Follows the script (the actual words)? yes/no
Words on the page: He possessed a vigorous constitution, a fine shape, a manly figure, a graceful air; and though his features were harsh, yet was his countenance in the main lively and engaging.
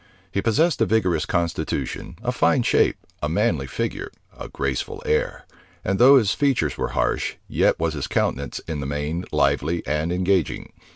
yes